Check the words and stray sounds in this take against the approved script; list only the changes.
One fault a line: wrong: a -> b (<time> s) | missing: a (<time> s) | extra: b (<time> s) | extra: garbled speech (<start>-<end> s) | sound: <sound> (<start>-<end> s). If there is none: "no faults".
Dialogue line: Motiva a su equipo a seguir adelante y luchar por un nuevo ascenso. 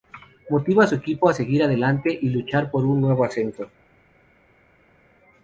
no faults